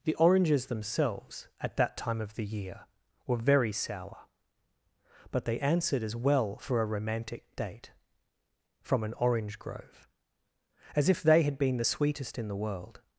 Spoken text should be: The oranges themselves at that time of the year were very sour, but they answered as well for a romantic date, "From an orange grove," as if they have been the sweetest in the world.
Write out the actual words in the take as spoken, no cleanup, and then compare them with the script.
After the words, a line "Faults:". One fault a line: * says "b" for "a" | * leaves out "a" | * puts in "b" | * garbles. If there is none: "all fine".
The oranges themselves at that time of the year were very sour, but they answered as well for a romantic date, "From an orange grove," as if they had been the sweetest in the world.
Faults:
* says "had" for "have"